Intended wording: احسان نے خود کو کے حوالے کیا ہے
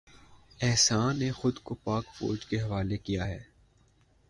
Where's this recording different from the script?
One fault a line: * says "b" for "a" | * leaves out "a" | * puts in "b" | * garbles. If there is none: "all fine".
* puts in "پاک فوج"